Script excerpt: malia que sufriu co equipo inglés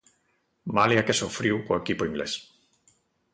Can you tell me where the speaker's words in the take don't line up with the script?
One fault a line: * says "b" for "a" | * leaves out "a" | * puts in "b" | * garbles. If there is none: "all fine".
all fine